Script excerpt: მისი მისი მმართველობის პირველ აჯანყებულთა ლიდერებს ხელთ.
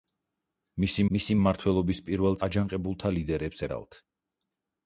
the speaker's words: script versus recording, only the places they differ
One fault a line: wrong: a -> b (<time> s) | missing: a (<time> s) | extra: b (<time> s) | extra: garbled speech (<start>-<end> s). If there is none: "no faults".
no faults